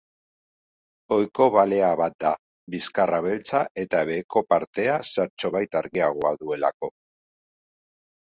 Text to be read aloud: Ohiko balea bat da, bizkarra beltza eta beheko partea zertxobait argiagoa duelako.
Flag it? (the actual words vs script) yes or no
no